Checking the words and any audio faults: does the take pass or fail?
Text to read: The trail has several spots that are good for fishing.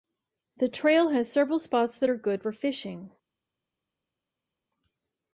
pass